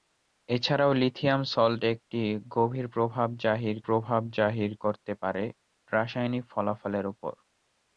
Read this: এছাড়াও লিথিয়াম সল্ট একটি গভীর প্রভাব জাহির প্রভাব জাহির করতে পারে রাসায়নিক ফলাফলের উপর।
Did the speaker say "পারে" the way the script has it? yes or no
yes